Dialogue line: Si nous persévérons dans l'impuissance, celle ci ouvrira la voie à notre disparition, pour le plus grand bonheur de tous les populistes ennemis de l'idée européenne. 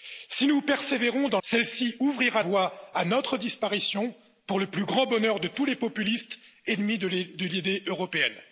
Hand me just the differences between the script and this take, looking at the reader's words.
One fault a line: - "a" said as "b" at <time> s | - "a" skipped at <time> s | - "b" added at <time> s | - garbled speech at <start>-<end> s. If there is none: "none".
- "l'impuissance" skipped at 1.4 s
- "la" skipped at 2.4 s